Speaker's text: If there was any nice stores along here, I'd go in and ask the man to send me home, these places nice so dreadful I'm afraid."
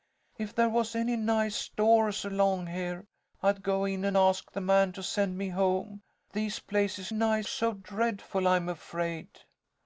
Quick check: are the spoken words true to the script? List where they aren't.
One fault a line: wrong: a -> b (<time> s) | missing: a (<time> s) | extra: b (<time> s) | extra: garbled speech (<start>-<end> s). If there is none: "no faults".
no faults